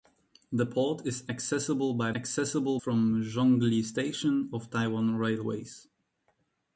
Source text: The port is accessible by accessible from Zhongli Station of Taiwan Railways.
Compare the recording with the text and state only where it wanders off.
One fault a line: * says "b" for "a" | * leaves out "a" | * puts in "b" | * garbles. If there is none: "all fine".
all fine